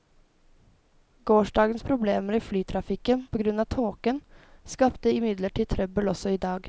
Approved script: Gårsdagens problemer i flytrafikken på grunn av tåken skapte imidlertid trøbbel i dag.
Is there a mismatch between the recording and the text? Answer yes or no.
yes